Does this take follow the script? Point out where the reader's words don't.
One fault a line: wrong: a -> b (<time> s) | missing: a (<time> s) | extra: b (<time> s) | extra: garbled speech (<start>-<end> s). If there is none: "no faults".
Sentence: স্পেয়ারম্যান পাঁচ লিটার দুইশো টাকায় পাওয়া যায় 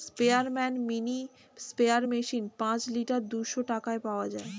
extra: মিনি স্প্রেয়ার মেশিন (0.9 s)